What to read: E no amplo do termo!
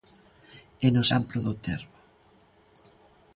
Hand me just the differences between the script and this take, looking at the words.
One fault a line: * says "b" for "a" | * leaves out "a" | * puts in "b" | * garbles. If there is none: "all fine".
all fine